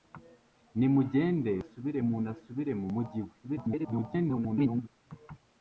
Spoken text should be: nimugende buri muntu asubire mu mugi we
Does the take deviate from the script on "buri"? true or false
true